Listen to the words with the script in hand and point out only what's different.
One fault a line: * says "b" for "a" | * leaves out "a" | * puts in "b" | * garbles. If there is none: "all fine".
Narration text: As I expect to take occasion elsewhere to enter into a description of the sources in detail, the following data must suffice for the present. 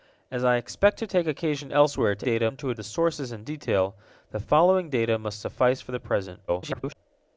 * says "data" for "enter"
* leaves out "description of"
* garbles